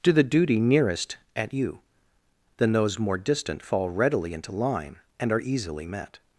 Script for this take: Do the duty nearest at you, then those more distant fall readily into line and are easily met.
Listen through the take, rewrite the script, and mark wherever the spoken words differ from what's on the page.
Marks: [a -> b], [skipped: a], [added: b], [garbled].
Do the duty nearest at you, then those more distant fall readily into line and are easily met.